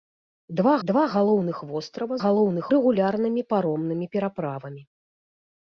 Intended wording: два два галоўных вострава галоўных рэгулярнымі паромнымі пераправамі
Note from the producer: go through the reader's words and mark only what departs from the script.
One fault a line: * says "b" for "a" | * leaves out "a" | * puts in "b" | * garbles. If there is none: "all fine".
all fine